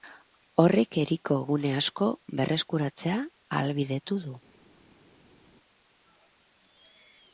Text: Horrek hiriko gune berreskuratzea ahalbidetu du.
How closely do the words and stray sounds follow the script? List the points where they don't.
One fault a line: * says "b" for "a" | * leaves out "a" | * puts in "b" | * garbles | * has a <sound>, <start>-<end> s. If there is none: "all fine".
* puts in "asko"